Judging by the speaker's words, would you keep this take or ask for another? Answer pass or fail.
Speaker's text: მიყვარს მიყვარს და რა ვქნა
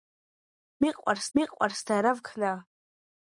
pass